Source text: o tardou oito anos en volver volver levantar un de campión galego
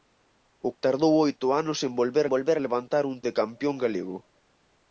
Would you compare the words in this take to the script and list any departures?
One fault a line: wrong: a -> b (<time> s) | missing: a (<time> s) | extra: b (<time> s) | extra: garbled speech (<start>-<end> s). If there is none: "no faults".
no faults